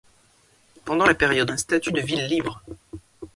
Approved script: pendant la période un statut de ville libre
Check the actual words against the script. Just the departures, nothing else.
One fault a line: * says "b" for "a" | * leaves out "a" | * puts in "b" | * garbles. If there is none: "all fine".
all fine